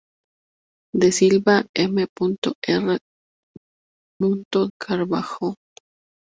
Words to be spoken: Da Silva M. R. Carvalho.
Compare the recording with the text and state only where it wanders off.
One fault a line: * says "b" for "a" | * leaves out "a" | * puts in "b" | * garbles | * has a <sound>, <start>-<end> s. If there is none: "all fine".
all fine